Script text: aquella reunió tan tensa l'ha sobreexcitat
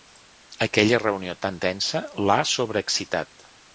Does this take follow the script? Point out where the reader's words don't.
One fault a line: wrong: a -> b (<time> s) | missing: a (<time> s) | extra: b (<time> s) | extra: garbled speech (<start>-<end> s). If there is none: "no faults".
no faults